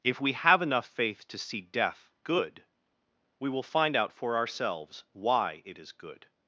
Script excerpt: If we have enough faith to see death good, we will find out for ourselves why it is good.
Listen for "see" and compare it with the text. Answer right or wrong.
right